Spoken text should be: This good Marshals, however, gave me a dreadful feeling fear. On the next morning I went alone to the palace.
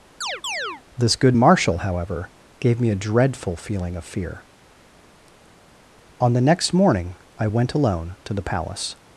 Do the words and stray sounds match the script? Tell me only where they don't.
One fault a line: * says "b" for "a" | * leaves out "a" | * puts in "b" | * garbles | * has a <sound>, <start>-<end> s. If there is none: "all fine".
* has a chirp, 0.2-0.8 s
* says "Marshal" for "Marshals"
* puts in "of"